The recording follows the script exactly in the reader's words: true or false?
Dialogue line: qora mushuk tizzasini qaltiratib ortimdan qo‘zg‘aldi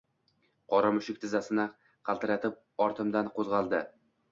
true